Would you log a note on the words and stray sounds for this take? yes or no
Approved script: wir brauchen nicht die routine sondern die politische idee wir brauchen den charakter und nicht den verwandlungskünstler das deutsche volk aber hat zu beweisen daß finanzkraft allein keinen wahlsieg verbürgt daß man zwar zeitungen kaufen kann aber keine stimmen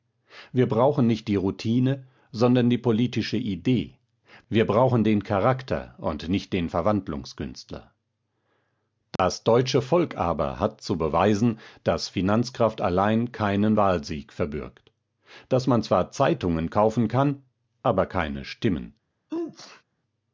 yes